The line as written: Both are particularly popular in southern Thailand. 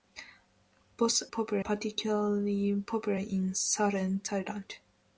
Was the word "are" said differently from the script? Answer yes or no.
yes